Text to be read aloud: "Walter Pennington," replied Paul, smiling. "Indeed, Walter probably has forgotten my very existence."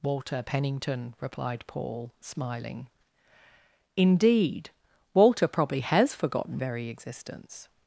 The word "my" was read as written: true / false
false